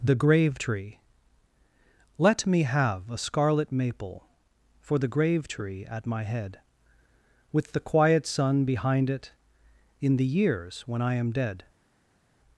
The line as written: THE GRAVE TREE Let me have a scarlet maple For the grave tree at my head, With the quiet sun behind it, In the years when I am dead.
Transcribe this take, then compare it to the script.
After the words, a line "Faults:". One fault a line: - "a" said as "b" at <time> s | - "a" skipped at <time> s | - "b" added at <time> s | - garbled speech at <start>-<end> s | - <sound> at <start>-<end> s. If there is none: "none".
THE GRAVE TREE Let me have a scarlet maple For the grave tree at my head, With the quiet sun behind it, In the years when I am dead.
Faults:
none